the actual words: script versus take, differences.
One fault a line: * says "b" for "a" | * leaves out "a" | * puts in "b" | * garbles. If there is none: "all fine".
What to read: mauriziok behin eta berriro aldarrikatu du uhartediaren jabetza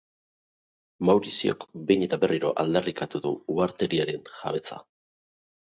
all fine